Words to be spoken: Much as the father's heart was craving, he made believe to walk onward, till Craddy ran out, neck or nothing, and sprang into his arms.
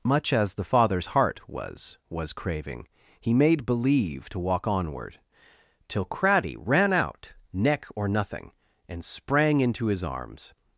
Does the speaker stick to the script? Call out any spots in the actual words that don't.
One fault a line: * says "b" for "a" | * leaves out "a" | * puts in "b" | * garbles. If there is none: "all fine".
* puts in "was"